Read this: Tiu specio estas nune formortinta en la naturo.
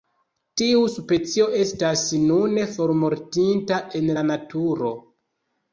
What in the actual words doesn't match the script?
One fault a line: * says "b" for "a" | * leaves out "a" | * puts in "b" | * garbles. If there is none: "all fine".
all fine